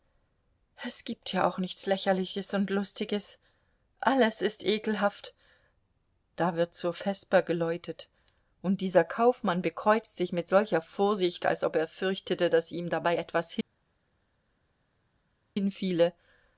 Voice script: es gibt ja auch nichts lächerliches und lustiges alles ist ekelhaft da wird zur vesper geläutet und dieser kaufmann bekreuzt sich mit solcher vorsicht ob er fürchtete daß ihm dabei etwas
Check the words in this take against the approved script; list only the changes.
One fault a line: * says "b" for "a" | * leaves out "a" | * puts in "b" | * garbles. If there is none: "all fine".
* puts in "als"